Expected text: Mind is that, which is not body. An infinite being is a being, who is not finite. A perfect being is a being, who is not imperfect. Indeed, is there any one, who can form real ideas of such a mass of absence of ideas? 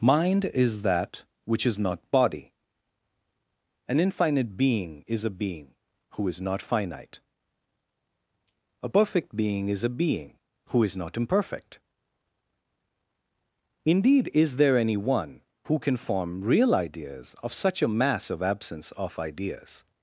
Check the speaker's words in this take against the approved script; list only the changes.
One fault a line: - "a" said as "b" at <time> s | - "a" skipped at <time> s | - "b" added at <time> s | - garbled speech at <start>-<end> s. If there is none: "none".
none